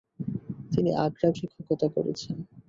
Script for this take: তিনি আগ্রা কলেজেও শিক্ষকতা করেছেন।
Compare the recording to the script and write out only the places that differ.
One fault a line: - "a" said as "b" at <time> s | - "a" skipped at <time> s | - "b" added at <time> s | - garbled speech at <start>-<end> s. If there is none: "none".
- "কলেজেও" skipped at 1.3 s